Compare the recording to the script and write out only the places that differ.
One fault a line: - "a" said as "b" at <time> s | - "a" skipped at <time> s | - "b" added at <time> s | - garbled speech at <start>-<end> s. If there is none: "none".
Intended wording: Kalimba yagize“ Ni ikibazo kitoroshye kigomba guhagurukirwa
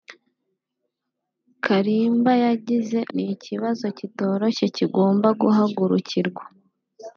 none